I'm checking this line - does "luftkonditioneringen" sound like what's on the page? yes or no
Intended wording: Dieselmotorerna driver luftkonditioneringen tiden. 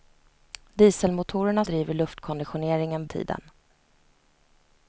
yes